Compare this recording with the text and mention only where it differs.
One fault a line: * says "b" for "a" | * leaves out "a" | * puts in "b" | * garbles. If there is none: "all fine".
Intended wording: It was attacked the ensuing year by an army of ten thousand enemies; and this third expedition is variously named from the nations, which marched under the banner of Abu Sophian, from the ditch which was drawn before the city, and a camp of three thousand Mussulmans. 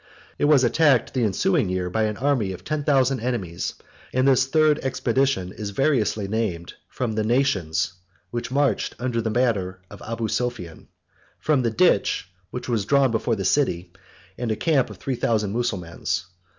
all fine